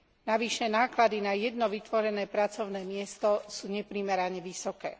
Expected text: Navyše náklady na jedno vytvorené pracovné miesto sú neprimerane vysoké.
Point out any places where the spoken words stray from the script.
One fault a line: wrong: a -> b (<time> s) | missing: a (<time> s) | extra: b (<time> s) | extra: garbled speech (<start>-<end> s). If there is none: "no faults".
no faults